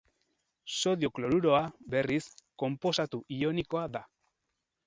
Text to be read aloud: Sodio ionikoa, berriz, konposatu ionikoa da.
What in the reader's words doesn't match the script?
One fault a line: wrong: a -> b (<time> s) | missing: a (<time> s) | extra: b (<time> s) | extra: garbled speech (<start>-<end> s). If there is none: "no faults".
wrong: ionikoa -> kloruroa (1.2 s)